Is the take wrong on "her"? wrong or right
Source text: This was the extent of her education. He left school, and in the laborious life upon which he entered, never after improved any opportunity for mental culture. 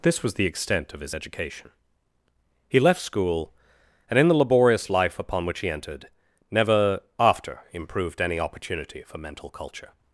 wrong